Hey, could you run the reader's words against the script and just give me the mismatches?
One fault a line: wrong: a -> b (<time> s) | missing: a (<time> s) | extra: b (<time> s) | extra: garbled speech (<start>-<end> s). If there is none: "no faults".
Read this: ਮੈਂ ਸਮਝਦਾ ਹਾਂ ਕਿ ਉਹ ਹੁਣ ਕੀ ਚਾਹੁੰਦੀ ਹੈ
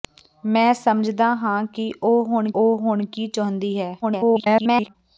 extra: ਉਹ ਹੁਣ (2.6 s)
extra: garbled speech (4.0-5.0 s)